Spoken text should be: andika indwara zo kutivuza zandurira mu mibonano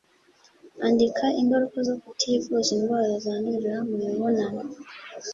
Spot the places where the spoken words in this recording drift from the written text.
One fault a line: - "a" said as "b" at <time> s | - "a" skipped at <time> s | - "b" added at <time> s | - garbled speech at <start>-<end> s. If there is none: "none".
- "indwara" said as "ingaruka" at 1.4 s
- "indwara" added at 2.7 s